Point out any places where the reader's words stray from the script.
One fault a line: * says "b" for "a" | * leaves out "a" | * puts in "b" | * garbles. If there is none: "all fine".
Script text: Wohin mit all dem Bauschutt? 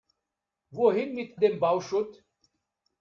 * leaves out "all"